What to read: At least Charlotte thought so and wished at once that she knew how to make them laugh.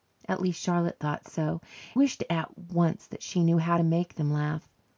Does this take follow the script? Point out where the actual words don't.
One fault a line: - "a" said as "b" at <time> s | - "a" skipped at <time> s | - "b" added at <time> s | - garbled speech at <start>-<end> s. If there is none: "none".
- "and" skipped at 1.6 s